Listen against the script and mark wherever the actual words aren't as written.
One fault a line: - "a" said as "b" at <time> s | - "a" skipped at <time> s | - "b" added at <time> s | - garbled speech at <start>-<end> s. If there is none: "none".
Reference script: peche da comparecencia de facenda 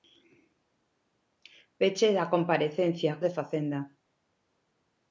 none